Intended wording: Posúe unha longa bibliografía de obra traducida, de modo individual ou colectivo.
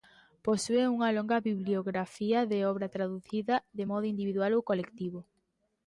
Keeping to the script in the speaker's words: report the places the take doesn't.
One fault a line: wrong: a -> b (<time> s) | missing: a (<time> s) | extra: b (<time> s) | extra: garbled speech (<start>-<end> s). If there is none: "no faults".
no faults